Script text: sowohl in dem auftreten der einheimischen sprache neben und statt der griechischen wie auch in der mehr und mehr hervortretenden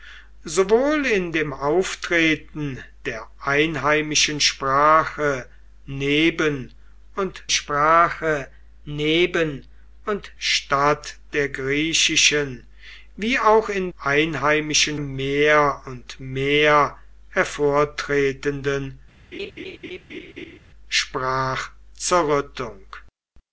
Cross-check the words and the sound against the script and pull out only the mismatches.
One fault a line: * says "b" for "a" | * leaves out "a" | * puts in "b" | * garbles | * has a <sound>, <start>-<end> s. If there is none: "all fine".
* puts in "sprache neben und"
* says "einheimischen" for "der"
* has a laugh, 19.3-20.6 s